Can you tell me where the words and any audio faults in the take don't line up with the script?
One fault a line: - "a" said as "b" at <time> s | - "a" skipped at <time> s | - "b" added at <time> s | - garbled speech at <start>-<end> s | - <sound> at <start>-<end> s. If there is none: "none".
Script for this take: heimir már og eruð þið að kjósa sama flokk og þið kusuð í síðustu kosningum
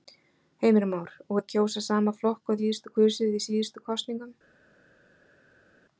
- "eruð þið" skipped at 1.4 s
- "þið" said as "síðustu" at 2.6 s